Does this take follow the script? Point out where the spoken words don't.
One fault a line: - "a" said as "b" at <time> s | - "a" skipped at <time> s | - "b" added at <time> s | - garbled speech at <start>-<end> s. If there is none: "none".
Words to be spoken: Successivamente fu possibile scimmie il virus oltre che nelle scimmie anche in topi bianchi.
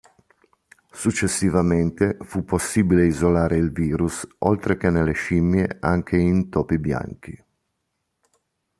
- "scimmie" said as "isolare" at 3.0 s